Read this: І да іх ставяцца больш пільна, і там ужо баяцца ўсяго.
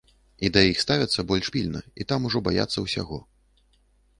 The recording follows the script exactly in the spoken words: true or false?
true